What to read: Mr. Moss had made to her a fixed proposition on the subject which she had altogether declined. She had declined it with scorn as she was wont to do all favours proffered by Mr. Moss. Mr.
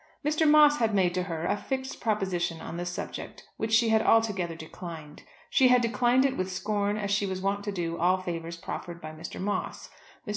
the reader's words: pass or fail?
pass